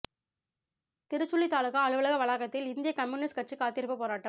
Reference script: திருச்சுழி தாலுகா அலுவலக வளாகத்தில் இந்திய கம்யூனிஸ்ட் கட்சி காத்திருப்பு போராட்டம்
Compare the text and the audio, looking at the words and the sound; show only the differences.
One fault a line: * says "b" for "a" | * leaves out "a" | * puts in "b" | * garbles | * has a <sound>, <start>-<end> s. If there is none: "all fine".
all fine